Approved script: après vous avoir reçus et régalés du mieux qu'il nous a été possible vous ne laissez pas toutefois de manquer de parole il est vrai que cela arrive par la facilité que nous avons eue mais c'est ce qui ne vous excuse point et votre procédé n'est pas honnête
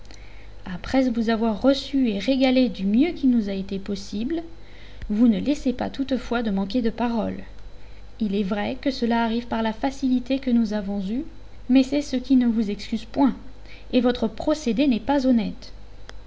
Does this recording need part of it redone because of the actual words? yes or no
no